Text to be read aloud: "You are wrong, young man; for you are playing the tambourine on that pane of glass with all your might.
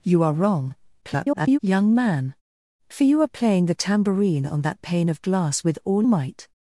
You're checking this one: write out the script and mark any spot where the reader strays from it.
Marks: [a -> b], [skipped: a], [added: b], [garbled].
"You are wrong, [garbled] young man; for you are playing the tambourine on that pane of glass with all [skipped: your] might.